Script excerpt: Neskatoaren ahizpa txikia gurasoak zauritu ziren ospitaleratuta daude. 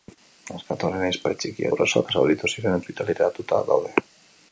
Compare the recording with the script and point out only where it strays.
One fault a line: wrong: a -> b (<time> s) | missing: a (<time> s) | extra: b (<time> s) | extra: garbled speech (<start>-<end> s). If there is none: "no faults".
no faults